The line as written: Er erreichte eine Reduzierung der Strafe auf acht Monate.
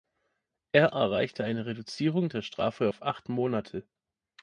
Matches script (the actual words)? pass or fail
pass